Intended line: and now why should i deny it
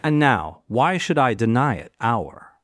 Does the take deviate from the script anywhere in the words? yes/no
yes